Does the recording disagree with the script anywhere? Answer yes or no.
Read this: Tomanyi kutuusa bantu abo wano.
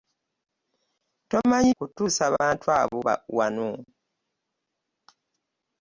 no